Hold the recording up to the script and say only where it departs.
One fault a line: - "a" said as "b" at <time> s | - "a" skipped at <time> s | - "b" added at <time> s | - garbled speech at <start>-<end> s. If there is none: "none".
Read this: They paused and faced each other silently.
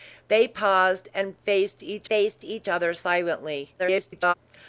- "faced each" added at 2.1 s
- garbled speech at 3.8-4.3 s